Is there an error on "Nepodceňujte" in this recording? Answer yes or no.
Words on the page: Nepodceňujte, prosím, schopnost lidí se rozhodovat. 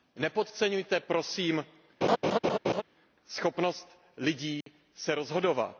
no